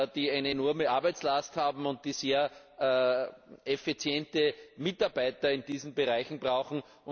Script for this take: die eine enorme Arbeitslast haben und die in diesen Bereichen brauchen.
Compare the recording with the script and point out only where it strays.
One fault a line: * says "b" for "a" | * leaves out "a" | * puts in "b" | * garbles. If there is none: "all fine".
* puts in "sehr effiziente Mitarbeiter"